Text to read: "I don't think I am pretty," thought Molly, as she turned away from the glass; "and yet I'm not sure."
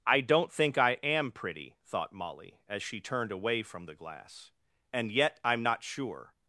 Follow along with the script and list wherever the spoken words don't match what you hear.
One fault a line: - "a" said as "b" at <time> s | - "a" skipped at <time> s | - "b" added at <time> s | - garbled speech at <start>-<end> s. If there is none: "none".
none